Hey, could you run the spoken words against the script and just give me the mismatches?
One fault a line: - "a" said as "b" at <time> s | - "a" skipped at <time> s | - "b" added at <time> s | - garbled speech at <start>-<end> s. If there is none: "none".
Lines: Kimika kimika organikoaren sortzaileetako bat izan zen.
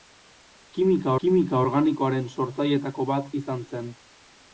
none